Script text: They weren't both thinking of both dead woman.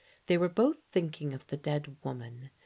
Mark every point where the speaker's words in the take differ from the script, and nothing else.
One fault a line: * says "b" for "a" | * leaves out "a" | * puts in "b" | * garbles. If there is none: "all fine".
* says "were" for "weren't"
* says "the" for "both"